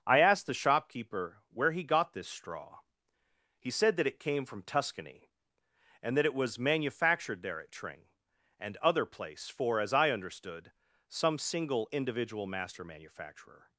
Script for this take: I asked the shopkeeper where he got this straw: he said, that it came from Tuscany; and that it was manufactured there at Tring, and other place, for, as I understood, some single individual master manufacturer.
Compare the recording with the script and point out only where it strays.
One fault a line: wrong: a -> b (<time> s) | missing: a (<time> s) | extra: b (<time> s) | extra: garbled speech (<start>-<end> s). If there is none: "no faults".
no faults